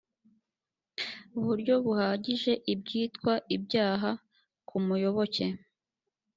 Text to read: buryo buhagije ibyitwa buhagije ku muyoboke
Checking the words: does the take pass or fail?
fail